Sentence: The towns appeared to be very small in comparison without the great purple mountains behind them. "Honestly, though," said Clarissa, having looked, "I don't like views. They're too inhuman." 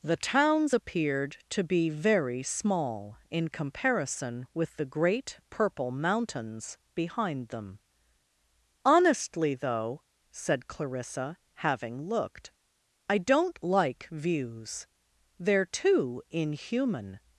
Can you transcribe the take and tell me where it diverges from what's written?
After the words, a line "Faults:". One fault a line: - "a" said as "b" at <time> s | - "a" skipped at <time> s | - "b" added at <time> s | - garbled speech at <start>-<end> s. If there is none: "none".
The towns appeared to be very small in comparison with the great purple mountains behind them. "Honestly, though," said Clarissa, having looked, "I don't like views. They're too inhuman."
Faults:
- "without" said as "with" at 4.5 s